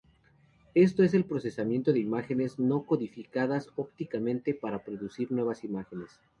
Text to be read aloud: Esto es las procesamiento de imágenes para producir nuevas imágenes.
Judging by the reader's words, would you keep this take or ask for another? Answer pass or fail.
fail